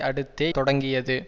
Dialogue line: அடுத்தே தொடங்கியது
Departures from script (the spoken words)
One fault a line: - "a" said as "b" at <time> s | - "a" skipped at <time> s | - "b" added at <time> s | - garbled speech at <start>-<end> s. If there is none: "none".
none